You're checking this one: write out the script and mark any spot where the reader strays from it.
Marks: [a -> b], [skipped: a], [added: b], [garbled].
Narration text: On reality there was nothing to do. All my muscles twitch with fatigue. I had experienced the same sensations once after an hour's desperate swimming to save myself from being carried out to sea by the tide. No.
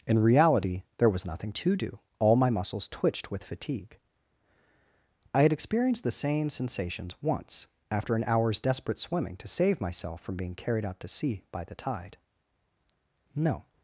[On -> In] reality there was nothing to do. All my muscles [twitch -> twitched] with fatigue. I had experienced the same sensations once after an hour's desperate swimming to save myself from being carried out to sea by the tide. No.